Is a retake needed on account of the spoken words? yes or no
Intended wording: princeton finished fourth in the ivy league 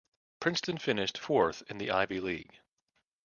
no